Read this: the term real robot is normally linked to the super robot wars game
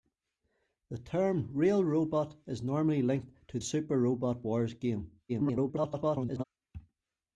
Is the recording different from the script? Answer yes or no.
yes